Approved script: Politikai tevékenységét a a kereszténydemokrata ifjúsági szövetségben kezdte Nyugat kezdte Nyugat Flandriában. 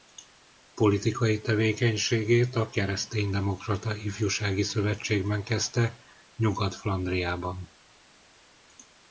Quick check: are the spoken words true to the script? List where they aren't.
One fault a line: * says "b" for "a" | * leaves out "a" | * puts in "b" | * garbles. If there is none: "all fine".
* leaves out "a"
* leaves out "kezdte Nyugat"